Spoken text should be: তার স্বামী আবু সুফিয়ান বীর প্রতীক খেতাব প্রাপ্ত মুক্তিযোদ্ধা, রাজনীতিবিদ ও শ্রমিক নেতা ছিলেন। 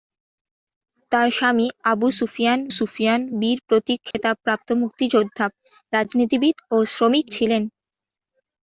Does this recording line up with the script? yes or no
no